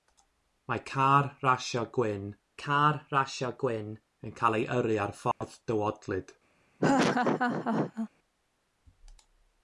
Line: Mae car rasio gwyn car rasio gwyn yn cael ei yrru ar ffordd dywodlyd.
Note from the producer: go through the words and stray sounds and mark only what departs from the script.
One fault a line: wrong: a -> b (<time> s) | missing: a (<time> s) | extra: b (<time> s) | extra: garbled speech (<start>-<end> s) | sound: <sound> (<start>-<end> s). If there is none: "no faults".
sound: dropout (5.3-5.4 s)
sound: laugh (6.8-8.1 s)